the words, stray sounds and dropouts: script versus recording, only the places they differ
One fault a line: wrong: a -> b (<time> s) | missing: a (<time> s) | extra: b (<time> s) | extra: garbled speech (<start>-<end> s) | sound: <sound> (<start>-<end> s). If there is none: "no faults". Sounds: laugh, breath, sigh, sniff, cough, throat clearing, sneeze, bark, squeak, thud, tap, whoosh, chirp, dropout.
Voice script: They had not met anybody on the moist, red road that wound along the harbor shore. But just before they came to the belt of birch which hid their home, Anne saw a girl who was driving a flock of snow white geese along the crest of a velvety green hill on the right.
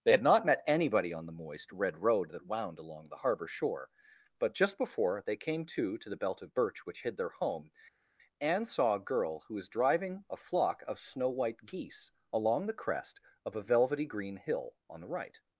extra: to (6.0 s)